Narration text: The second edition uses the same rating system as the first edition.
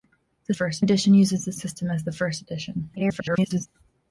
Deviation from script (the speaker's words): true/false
true